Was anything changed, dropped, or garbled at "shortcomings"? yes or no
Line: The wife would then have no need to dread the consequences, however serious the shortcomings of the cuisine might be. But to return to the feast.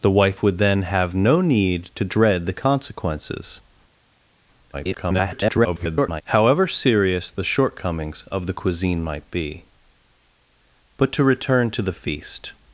no